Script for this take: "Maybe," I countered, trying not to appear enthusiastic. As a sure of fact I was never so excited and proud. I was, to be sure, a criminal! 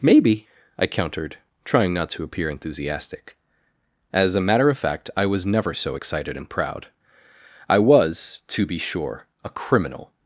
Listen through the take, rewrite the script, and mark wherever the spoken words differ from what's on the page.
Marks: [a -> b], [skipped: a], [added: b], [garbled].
"Maybe," I countered, trying not to appear enthusiastic. As a [sure -> matter] of fact I was never so excited and proud. I was, to be sure, a criminal!